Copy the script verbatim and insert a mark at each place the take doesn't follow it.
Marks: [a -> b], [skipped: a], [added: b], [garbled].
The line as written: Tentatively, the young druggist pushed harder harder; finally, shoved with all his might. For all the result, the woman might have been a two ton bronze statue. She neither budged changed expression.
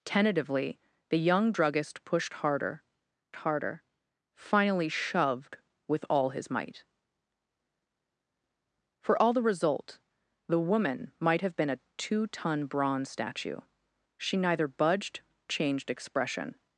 Tentatively, the young druggist pushed harder harder; finally, shoved with all his might. For all the result, the woman might have been a two ton bronze statue. She neither budged changed expression.